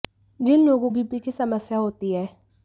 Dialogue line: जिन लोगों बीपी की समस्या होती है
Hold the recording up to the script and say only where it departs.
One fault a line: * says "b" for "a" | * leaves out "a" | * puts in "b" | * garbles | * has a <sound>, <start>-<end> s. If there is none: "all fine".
all fine